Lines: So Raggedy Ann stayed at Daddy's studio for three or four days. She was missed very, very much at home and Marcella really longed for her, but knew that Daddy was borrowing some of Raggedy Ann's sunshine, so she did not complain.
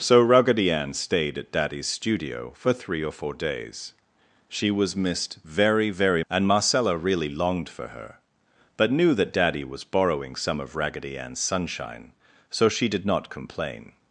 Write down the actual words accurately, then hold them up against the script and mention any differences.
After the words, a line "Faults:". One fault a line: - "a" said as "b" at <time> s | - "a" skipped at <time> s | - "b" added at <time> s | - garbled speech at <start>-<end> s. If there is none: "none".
So Raggedy Ann stayed at Daddy's studio for three or four days. She was missed very, very and Marcella really longed for her, but knew that Daddy was borrowing some of Raggedy Ann's sunshine, so she did not complain.
Faults:
- "much at home" skipped at 6.2 s